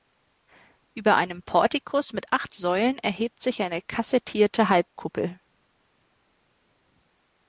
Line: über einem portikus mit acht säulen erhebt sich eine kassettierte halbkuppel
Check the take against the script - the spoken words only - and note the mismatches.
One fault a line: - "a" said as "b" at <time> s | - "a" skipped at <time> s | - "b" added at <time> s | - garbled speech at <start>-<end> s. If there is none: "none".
none